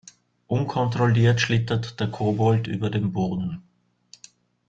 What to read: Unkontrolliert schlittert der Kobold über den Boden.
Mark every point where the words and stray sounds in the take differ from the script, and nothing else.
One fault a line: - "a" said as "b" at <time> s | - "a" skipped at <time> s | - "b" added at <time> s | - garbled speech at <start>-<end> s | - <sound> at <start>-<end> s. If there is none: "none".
none